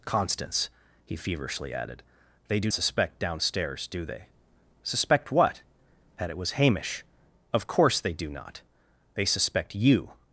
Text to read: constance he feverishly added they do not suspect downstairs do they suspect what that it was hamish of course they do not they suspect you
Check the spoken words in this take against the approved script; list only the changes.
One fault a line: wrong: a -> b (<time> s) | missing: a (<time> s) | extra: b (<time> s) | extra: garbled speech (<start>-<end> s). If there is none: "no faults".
missing: not (2.7 s)